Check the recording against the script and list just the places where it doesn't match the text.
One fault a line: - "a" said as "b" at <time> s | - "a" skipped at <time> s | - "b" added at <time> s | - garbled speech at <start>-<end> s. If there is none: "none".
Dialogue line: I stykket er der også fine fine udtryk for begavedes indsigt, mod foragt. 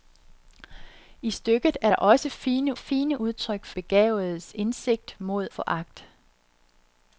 none